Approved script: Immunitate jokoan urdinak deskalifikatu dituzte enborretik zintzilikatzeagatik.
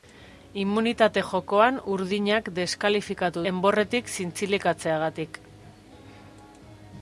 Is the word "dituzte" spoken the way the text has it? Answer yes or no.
no